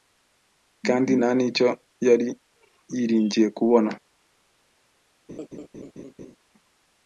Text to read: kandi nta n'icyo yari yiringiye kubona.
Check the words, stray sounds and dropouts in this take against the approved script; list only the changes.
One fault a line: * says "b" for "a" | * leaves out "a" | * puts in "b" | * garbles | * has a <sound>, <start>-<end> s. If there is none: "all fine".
* has a laugh, 5.3-6.4 s